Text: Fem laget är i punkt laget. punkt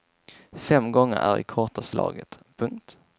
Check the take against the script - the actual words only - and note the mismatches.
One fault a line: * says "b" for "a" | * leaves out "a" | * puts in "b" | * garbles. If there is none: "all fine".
* says "gånger" for "laget"
* says "kortaste" for "punkt"